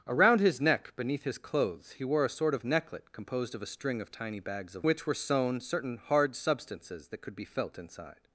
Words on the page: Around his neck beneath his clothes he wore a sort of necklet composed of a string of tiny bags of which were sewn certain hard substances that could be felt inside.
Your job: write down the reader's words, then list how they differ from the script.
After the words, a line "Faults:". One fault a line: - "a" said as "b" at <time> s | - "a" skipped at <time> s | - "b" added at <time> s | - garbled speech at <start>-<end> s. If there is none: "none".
Around his neck beneath his clothes he wore a sort of necklet composed of a string of tiny bags of which were sewn certain hard substances that could be felt inside.
Faults:
none